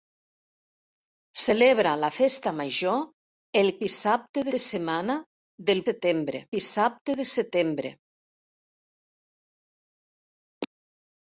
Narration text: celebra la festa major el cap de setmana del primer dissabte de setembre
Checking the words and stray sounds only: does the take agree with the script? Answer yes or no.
no